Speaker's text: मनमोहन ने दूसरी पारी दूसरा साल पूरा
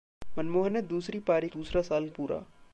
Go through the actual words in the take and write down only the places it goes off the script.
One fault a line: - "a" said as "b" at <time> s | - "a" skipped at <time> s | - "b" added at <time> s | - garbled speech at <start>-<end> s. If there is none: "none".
none